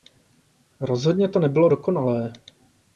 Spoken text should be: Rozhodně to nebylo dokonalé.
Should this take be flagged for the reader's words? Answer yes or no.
no